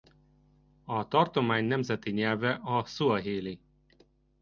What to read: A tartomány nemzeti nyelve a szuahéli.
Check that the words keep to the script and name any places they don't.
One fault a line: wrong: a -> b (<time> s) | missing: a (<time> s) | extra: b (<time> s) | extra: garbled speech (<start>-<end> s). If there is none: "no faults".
no faults